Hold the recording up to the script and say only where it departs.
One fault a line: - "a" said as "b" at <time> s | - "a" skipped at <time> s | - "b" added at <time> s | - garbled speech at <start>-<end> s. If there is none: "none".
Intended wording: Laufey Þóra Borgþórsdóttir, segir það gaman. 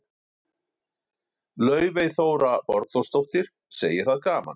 none